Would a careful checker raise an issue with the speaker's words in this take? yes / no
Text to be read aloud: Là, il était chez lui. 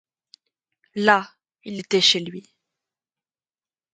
no